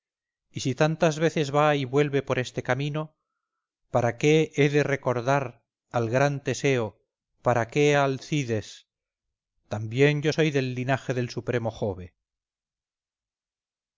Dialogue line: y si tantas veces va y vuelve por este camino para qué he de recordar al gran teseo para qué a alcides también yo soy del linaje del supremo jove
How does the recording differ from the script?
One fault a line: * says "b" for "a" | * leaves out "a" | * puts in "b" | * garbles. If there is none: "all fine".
all fine